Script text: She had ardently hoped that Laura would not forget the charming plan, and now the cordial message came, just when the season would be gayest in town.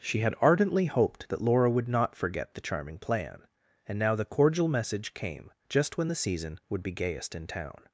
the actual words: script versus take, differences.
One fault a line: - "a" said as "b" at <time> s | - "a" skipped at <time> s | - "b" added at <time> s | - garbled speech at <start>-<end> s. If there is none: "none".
none